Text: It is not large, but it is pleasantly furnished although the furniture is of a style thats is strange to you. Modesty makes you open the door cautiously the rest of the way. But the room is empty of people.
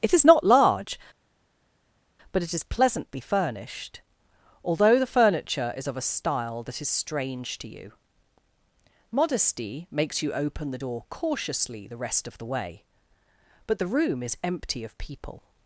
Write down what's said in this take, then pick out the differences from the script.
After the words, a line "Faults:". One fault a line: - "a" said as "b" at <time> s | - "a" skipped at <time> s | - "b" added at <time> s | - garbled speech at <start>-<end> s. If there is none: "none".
It is not large, but it is pleasantly furnished although the furniture is of a style that is strange to you. Modesty makes you open the door cautiously the rest of the way. But the room is empty of people.
Faults:
- "thats" said as "that" at 6.6 s